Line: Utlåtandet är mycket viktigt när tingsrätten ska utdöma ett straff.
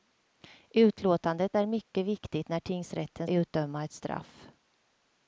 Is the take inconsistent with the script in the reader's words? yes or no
yes